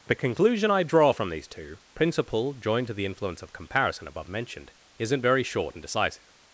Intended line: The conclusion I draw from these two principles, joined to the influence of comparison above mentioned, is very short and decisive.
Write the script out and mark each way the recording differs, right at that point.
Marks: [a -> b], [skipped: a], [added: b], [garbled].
The conclusion I draw from these two [principles, -> principle] joined to the influence of comparison above mentioned, [is -> isn't] very short and decisive.